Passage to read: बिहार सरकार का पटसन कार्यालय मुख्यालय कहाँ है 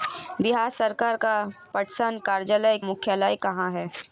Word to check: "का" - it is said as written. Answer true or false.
true